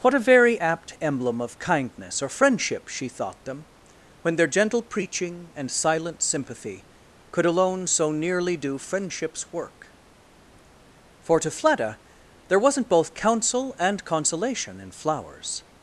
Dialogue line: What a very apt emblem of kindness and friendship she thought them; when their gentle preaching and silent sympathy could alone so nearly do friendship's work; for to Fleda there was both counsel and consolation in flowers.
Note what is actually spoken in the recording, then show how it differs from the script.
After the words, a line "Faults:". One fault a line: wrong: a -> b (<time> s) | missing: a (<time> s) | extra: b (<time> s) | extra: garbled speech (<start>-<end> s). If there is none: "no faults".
What a very apt emblem of kindness or friendship she thought them; when their gentle preaching and silent sympathy could alone so nearly do friendship's work; for to Fleda there wasn't both counsel and consolation in flowers.
Faults:
wrong: and -> or (2.2 s)
wrong: was -> wasn't (12.6 s)